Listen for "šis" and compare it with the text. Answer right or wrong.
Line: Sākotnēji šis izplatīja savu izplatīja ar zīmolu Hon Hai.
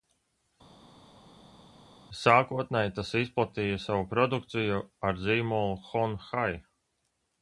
wrong